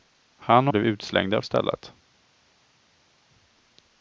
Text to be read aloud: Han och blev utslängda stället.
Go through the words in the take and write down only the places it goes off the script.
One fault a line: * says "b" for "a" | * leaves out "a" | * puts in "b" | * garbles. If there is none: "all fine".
all fine